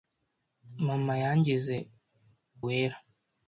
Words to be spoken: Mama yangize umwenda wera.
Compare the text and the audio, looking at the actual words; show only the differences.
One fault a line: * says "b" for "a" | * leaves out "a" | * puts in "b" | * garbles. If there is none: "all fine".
* leaves out "umwenda"